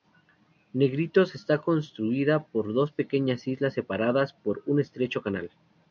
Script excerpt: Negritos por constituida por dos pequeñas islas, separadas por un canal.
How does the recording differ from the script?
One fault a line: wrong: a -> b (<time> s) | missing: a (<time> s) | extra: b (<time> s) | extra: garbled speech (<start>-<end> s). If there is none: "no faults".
wrong: por -> está (1.4 s)
extra: estrecho (4.8 s)